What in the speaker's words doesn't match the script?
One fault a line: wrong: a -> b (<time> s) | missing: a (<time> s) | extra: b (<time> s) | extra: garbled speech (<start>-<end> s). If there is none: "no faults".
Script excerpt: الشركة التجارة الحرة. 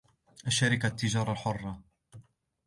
no faults